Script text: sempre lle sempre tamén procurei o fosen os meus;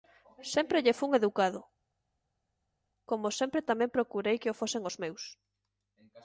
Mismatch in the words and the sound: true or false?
true